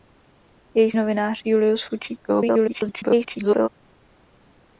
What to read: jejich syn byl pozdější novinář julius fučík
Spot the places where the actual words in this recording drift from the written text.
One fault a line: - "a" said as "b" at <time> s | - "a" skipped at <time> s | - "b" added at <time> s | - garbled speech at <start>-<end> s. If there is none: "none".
- "syn byl pozdější" skipped at 0.9 s
- garbled speech at 2.3-3.7 s